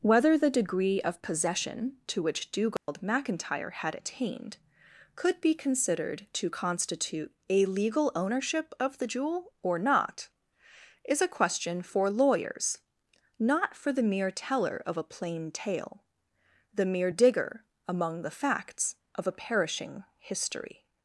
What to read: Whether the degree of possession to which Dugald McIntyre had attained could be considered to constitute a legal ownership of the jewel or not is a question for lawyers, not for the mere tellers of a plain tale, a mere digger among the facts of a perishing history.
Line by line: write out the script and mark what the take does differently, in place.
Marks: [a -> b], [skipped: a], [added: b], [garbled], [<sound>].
Whether the degree of possession to which Dugald [dropout] McIntyre had attained could be considered to constitute a legal ownership of the jewel or not is a question for lawyers, not for the mere [tellers -> teller] of a plain tale, [a -> the] mere digger among the facts of a perishing history.